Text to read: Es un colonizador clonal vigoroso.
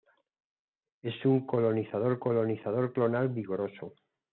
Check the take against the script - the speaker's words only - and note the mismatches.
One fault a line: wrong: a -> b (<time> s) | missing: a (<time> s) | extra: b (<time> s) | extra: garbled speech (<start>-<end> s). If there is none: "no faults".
extra: colonizador (2.2 s)